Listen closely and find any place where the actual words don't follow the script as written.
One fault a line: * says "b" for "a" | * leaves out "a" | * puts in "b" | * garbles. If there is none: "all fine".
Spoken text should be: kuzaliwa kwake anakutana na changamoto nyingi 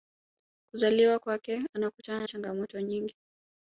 * leaves out "na"